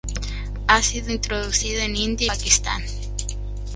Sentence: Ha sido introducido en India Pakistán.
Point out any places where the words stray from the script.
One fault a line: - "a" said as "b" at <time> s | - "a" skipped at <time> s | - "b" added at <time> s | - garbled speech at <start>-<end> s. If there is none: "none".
none